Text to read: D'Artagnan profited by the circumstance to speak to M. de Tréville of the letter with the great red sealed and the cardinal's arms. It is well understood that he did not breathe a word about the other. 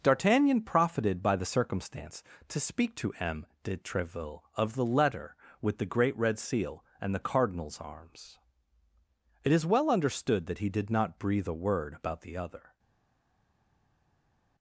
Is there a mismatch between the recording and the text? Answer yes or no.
yes